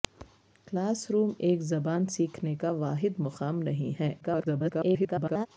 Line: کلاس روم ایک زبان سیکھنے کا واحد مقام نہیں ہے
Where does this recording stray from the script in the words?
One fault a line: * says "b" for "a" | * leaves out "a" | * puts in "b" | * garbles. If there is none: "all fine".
* garbles